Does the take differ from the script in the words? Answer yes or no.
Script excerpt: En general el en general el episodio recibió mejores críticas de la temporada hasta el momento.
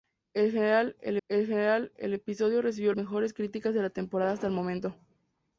no